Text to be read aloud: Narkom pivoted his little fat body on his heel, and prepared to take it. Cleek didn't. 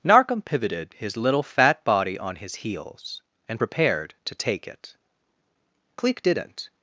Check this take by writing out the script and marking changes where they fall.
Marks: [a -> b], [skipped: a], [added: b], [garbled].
Narkom pivoted his little fat body on his [heel, -> heels] and prepared to take it. Cleek didn't.